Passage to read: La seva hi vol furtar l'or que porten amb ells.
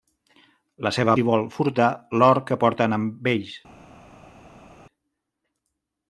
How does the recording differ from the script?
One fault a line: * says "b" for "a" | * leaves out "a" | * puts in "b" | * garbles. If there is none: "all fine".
all fine